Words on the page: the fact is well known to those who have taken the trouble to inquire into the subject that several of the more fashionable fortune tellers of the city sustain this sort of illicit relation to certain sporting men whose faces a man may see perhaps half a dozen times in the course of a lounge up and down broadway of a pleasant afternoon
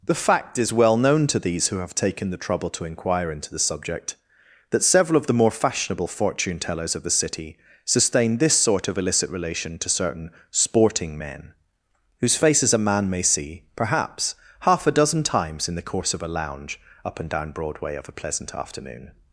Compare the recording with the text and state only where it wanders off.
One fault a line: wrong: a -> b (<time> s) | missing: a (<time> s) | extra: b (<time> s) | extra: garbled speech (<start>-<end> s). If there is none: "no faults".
wrong: those -> these (1.4 s)